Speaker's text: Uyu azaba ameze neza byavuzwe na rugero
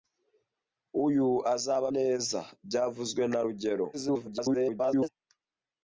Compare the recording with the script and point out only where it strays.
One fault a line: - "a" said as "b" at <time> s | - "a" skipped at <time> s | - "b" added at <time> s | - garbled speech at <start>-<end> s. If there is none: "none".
- "ameze" skipped at 1.9 s
- garbled speech at 3.9-5.1 s